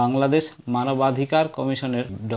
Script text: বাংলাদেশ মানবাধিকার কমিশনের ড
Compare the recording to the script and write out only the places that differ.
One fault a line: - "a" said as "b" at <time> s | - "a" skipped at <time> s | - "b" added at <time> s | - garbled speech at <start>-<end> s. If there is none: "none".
none